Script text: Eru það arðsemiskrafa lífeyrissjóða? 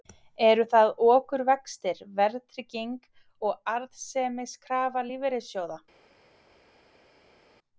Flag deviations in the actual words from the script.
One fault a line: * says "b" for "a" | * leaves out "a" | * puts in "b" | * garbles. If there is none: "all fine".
* puts in "okurvextir verðtrygging og"